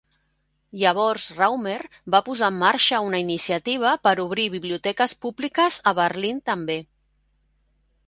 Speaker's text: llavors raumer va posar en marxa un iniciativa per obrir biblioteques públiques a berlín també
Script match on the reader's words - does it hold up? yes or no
no